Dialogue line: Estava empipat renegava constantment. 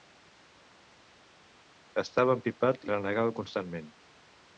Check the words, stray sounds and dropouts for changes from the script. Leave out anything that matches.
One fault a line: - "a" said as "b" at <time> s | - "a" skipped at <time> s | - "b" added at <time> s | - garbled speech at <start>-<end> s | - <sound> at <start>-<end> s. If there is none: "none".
none